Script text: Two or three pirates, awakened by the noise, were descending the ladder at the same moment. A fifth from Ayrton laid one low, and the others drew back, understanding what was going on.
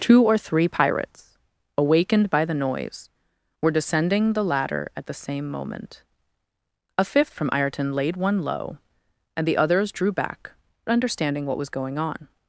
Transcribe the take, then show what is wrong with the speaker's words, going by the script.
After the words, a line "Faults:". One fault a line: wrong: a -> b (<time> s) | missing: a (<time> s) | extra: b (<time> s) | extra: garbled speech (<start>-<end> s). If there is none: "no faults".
Two or three pirates, awakened by the noise, were descending the ladder at the same moment. A fifth from Ayrton laid one low, and the others drew back, understanding what was going on.
Faults:
no faults